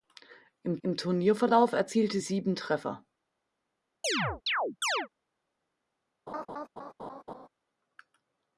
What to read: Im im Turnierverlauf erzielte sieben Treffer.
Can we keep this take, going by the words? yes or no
yes